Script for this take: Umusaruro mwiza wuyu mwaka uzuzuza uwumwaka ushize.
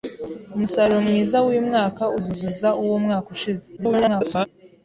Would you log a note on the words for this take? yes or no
yes